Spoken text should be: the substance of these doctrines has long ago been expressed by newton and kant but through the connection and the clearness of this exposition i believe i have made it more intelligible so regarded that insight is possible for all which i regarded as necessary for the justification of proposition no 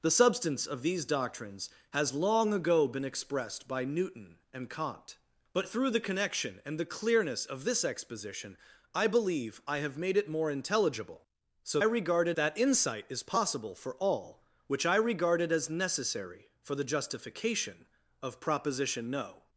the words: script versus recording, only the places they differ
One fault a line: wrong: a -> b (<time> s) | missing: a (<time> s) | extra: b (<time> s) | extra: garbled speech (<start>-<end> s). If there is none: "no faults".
no faults